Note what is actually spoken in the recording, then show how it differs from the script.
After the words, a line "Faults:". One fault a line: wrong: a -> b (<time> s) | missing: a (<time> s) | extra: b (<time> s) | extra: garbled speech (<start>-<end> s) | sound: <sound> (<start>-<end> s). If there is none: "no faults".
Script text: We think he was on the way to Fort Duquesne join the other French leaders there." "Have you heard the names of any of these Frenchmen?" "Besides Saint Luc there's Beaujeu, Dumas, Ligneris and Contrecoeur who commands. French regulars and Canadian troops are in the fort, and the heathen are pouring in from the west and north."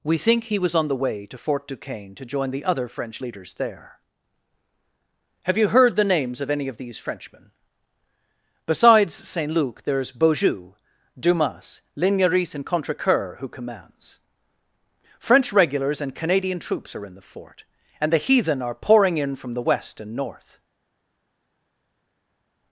We think he was on the way to Fort Duquesne to join the other French leaders there." "Have you heard the names of any of these Frenchmen?" "Besides Saint Luc there's Beaujeu, Dumas, Ligneris and Contrecoeur who commands. French regulars and Canadian troops are in the fort, and the heathen are pouring in from the west and north."
Faults:
extra: to (2.1 s)